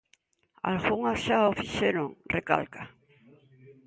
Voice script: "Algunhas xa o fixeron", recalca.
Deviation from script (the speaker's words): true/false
false